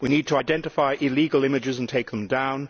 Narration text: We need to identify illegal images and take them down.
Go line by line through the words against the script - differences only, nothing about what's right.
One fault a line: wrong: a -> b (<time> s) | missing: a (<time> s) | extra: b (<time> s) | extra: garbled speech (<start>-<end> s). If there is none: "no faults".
no faults